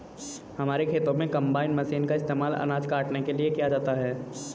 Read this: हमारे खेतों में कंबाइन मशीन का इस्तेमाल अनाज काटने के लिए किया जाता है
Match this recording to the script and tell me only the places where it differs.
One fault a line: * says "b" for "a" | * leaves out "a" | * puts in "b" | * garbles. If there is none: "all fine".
all fine